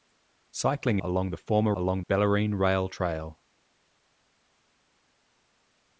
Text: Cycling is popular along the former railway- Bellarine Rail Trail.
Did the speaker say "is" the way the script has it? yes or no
no